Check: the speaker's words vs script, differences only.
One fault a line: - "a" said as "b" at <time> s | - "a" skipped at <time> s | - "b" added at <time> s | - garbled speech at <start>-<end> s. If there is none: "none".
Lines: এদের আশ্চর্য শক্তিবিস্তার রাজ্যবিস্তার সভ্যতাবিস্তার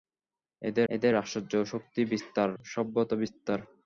- "এদের" added at 0.9 s
- "রাজ্যবিস্তার" skipped at 2.5 s